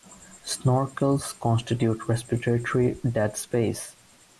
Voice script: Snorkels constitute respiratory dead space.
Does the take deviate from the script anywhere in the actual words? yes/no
no